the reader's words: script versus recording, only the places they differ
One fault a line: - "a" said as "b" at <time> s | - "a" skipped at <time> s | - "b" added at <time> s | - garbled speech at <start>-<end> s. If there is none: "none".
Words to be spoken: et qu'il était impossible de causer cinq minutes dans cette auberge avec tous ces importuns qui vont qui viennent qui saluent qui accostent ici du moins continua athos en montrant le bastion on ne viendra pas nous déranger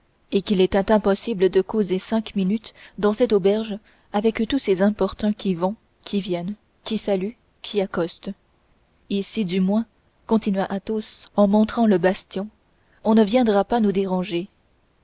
none